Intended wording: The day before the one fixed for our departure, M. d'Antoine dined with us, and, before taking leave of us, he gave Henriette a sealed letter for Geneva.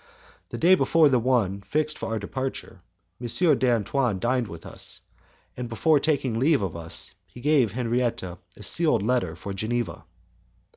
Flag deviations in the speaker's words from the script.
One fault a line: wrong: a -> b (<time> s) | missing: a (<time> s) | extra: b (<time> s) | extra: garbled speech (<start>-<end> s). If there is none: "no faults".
no faults